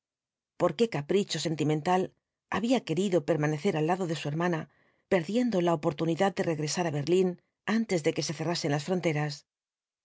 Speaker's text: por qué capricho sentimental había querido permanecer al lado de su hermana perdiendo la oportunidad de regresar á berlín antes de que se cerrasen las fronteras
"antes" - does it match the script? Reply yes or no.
yes